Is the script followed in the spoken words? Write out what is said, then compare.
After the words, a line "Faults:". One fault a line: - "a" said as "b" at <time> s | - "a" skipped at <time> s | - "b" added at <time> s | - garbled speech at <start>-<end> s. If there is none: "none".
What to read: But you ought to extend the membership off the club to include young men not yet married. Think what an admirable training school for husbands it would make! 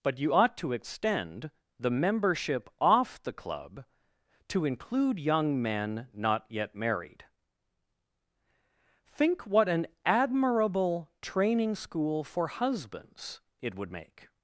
But you ought to extend the membership off the club to include young men not yet married. Think what an admirable training school for husbands it would make!
Faults:
none